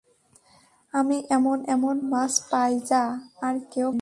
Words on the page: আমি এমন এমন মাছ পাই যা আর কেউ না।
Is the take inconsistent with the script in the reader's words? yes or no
no